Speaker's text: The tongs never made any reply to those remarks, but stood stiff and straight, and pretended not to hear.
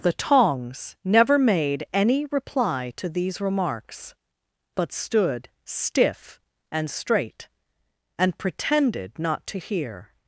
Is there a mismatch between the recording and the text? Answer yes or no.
yes